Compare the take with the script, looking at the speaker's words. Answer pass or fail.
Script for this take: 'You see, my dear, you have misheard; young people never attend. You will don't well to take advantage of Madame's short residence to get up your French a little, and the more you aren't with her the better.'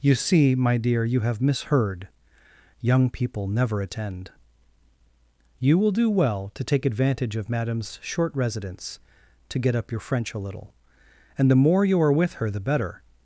fail